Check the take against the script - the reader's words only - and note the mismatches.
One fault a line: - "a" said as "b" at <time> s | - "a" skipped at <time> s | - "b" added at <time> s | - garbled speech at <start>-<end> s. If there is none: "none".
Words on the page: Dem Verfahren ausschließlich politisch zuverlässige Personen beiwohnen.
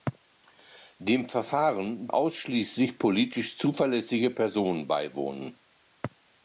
none